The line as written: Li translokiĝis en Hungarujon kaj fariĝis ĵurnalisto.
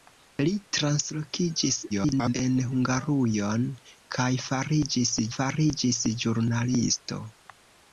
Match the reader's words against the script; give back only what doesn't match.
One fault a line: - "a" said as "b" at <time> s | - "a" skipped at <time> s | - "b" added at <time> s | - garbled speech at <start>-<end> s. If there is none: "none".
- garbled speech at 1.9-2.3 s
- "fariĝis" added at 5.4 s